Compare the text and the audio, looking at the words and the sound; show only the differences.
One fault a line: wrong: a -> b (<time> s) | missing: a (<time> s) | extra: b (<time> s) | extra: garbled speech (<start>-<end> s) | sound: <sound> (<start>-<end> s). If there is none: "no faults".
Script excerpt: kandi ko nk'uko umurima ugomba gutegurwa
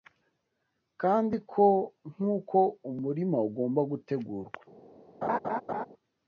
sound: laugh (5.2-5.9 s)